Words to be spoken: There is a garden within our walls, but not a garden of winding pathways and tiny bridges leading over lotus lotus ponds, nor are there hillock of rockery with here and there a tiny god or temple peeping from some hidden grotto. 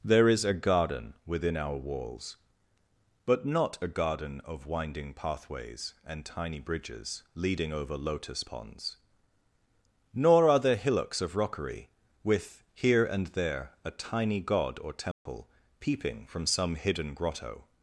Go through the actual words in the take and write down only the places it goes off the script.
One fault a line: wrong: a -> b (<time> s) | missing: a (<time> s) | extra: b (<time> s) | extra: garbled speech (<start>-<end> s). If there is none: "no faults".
missing: lotus (8.4 s)
wrong: hillock -> hillocks (10.8 s)